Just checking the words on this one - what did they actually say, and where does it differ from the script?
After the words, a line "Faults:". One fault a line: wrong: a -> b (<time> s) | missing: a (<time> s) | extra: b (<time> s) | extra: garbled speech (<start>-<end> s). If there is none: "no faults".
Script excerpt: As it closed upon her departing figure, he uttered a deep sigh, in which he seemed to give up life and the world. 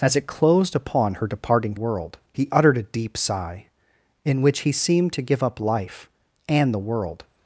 As it closed upon her departing world, he uttered a deep sigh, in which he seemed to give up life and the world.
Faults:
wrong: figure -> world (1.7 s)